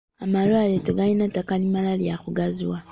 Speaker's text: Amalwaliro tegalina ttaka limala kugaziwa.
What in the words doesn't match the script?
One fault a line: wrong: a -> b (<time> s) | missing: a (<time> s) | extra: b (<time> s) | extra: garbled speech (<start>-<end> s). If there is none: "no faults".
extra: lya (2.0 s)